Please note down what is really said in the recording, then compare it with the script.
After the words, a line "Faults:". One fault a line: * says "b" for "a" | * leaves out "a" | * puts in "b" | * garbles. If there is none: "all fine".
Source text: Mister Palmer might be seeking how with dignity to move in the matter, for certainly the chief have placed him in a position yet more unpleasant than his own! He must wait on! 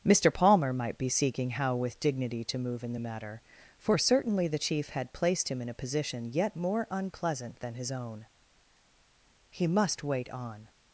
Mister Palmer might be seeking how with dignity to move in the matter, for certainly the chief had placed him in a position yet more unpleasant than his own! He must wait on!
Faults:
* says "had" for "have"